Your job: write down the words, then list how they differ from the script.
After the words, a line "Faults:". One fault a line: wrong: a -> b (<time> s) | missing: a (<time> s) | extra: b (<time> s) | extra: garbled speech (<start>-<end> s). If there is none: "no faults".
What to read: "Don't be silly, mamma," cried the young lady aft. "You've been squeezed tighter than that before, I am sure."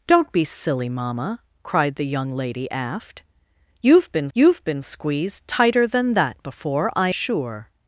"Don't be silly, mamma," cried the young lady aft. "You've been you've been squeezed tighter than that before, I sure."
Faults:
extra: you've been (4.3 s)
missing: am (7.1 s)